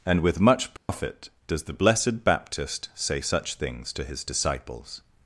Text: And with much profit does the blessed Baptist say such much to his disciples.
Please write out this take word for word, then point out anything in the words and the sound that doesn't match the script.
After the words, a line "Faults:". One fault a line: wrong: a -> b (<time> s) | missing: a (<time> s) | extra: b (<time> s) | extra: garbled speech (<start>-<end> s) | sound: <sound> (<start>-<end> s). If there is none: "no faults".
And with much profit does the blessed Baptist say such things to his disciples.
Faults:
sound: dropout (0.8-0.9 s)
wrong: much -> things (3.5 s)